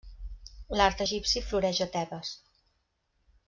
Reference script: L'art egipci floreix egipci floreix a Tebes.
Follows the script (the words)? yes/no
no